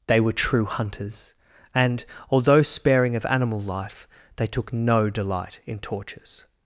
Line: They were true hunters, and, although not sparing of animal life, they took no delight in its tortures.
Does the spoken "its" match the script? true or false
false